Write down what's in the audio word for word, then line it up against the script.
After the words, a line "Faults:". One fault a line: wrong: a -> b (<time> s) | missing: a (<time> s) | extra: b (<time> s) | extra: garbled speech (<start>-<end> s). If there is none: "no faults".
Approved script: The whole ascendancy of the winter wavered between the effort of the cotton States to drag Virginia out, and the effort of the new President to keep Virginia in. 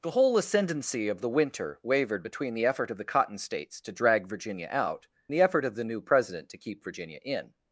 The whole ascendancy of the winter wavered between the effort of the cotton States to drag Virginia out, the effort of the new President to keep Virginia in.
Faults:
missing: and (5.1 s)